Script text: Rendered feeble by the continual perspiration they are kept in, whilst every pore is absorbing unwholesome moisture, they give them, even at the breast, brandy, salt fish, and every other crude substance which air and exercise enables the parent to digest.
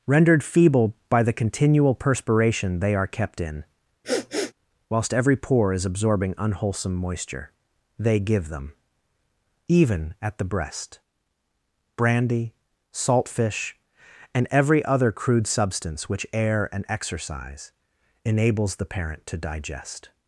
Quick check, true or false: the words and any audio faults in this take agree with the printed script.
false